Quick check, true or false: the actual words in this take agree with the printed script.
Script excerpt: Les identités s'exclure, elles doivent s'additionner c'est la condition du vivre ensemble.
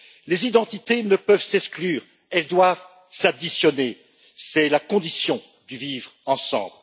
false